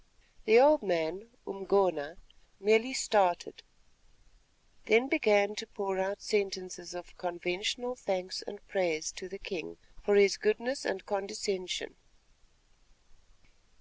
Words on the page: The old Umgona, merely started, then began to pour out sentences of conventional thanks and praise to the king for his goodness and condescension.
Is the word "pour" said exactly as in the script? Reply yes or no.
yes